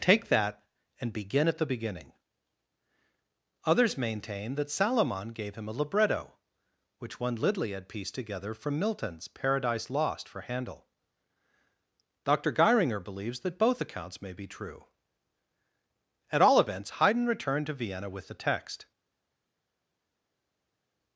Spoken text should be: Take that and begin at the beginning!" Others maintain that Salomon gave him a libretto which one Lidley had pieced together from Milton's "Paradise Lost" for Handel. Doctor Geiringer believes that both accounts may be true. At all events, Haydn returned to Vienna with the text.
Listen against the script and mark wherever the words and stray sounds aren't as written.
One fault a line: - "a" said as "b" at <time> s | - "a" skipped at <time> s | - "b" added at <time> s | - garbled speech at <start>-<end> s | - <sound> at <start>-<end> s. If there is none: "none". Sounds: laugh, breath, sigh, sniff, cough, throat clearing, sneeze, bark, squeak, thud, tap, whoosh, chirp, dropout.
none